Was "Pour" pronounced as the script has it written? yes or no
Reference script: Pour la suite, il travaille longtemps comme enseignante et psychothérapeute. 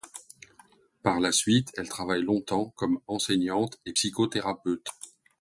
no